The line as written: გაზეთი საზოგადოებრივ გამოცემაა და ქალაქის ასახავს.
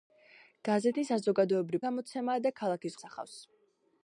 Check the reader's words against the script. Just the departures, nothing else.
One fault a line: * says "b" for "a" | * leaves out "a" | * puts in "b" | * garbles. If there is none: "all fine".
all fine